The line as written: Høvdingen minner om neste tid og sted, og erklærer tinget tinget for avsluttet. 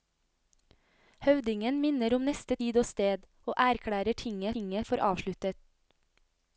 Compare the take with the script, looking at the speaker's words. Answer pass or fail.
pass